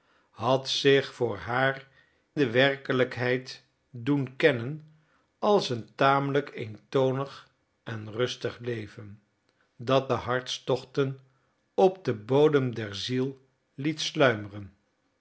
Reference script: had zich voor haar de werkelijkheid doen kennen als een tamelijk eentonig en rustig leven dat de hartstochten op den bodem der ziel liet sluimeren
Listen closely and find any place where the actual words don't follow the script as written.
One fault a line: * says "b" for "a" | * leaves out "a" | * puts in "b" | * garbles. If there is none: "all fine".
all fine